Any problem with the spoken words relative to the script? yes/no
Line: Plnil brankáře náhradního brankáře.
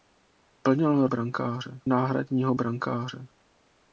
no